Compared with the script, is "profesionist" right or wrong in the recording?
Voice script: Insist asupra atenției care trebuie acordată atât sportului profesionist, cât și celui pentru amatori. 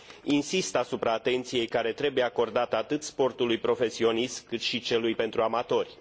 right